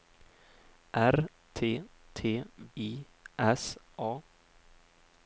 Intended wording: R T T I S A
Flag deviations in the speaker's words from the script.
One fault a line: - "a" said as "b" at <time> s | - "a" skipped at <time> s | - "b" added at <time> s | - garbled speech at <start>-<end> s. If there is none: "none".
none